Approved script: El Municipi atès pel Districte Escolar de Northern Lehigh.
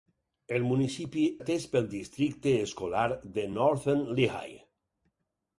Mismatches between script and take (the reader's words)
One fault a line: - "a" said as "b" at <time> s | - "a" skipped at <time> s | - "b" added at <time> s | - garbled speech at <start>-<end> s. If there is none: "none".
none